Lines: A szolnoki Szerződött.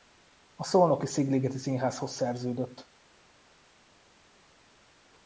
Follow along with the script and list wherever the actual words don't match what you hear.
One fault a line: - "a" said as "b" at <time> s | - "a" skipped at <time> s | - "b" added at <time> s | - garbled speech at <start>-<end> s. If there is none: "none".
- "Szigligeti Színházhoz" added at 1.1 s